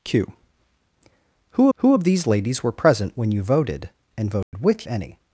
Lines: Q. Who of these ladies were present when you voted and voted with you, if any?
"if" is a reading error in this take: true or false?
true